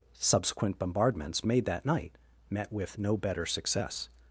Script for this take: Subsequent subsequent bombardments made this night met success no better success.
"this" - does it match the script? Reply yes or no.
no